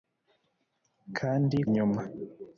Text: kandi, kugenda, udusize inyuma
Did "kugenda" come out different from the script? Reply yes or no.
yes